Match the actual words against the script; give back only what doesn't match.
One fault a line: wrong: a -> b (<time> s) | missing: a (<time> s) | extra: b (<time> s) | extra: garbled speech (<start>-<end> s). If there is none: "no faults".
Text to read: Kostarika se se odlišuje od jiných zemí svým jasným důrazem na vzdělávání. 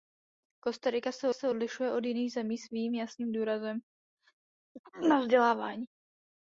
no faults